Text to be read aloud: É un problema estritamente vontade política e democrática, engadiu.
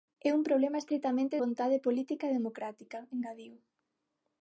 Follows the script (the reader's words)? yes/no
yes